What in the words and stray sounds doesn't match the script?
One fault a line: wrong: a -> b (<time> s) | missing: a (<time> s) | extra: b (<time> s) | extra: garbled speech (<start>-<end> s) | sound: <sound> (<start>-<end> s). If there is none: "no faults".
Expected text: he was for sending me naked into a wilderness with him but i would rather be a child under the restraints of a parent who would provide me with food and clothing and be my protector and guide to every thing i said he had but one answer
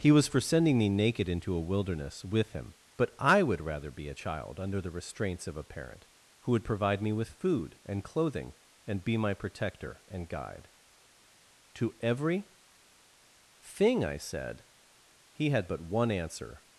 no faults